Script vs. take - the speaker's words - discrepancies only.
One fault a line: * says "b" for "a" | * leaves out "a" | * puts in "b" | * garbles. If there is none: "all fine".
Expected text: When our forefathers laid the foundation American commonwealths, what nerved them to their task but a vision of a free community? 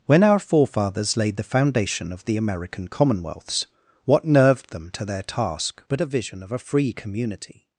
* puts in "of the"